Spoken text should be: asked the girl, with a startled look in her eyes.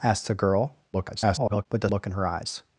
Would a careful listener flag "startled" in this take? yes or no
yes